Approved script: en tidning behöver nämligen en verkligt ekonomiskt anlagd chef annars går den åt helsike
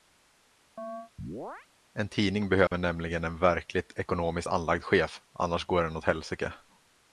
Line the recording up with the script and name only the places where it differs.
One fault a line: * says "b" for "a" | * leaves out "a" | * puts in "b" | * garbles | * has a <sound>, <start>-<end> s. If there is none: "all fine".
* has a chirp, 0.8-1.7 s
* has a dropout, 2.7-2.7 s